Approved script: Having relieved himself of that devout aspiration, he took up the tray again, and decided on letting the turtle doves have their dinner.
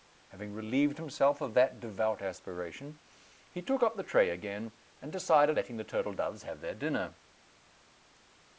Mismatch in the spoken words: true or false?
true